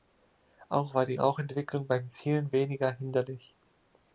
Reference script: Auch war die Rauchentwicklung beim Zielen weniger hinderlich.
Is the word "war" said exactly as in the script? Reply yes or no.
yes